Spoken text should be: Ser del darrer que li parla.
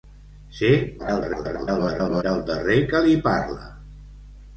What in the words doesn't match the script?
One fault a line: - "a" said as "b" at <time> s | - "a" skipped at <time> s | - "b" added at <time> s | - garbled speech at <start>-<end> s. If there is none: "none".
- garbled speech at 1.0-2.2 s